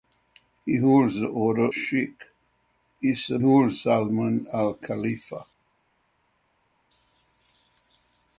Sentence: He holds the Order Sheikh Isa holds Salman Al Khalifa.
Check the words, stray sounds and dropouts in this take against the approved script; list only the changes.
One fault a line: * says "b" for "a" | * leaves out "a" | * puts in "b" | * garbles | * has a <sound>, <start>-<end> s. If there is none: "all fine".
all fine